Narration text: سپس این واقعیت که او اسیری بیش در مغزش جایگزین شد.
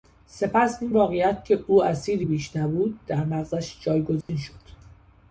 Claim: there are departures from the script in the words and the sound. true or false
true